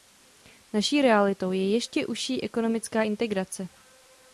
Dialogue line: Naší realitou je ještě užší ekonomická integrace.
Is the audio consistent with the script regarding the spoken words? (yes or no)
yes